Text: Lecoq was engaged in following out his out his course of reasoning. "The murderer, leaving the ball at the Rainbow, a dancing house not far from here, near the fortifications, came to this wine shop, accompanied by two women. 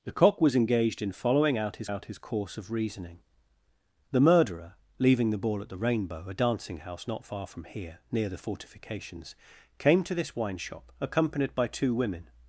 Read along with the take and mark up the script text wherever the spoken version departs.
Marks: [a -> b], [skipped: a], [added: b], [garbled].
Lecoq was engaged in following out his out his course of reasoning. "The murderer, leaving the ball at the Rainbow, a dancing house not far from here, near the fortifications, came to this wine shop, accompanied by two women.